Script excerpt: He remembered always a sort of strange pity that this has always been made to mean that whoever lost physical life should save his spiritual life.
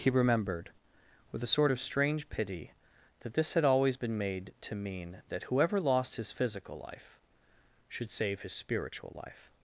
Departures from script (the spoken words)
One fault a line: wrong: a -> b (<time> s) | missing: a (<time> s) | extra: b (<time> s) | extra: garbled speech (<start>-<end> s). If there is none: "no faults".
wrong: always -> with (1.3 s)
wrong: has -> had (3.5 s)
extra: his (6.2 s)